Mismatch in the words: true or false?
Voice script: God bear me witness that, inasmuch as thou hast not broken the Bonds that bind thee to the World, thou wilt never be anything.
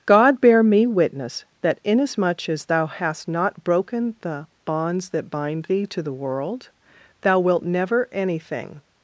true